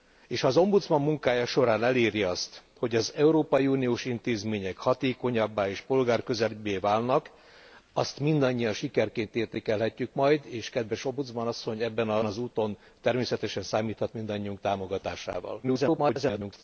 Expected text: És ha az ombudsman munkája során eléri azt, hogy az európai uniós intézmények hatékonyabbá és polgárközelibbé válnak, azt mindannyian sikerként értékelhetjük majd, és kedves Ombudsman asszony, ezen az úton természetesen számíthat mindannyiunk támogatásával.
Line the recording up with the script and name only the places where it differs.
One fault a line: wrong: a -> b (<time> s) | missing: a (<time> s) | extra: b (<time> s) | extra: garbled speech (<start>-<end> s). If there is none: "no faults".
missing: ezen (11.8 s)
extra: garbled speech (15.6-16.6 s)